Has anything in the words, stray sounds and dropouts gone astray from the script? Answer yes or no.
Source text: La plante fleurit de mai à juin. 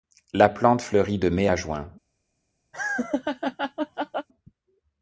yes